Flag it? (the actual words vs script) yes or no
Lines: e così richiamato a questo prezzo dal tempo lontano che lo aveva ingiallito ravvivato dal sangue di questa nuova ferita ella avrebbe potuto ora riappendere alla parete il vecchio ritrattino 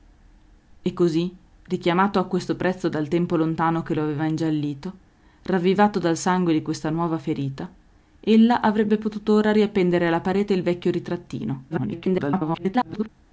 yes